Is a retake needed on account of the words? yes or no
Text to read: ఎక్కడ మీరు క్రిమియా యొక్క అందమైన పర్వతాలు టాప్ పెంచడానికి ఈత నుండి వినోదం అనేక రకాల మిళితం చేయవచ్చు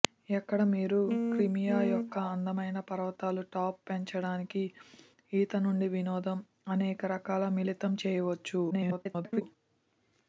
yes